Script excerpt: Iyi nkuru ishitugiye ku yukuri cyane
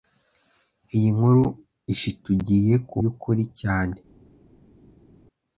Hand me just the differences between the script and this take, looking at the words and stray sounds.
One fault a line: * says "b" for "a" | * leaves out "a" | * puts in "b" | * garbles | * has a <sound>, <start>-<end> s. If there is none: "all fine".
all fine